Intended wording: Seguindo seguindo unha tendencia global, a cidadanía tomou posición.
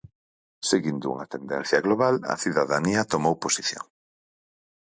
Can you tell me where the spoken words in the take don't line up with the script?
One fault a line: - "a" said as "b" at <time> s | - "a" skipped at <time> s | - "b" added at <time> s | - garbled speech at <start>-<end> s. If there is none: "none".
- "seguindo" skipped at 1.1 s